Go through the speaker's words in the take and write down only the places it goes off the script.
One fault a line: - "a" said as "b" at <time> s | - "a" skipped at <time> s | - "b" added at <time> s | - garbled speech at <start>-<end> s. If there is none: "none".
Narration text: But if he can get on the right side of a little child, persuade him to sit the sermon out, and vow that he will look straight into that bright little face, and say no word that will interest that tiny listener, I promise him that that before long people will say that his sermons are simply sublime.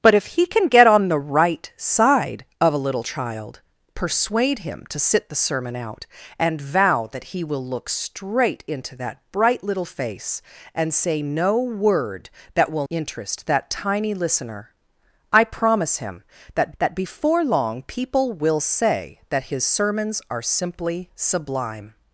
none